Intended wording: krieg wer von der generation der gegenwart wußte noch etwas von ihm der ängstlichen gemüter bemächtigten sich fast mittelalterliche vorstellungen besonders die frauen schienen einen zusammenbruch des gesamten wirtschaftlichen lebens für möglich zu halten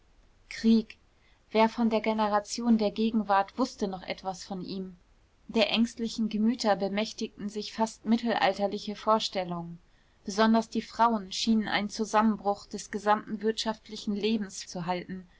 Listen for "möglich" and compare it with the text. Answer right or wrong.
wrong